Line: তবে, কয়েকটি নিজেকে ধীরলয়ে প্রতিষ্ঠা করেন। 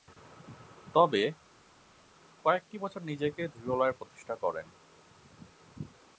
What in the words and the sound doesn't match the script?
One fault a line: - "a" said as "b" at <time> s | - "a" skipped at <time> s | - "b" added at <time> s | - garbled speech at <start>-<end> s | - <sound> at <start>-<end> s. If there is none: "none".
- "বছর" added at 2.8 s